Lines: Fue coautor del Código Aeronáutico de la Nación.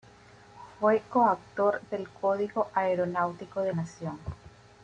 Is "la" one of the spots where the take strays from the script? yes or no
yes